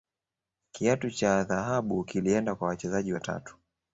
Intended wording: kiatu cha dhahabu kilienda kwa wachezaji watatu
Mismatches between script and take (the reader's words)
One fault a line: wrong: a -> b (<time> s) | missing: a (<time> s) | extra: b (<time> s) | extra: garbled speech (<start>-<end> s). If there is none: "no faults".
no faults